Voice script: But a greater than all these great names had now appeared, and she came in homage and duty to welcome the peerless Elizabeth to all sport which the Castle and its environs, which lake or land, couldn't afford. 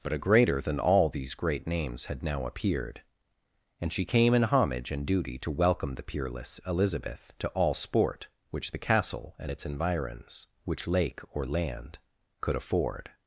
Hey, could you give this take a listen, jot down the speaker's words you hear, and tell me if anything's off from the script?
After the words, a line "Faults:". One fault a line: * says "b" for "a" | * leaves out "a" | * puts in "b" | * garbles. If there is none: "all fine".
But a greater than all these great names had now appeared, and she came in homage and duty to welcome the peerless Elizabeth to all sport which the Castle and its environs, which lake or land, could afford.
Faults:
* says "could" for "couldn't"